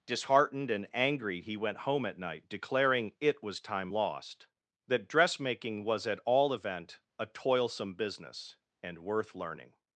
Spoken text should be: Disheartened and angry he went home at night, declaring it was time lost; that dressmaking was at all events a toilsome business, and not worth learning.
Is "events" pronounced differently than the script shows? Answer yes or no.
yes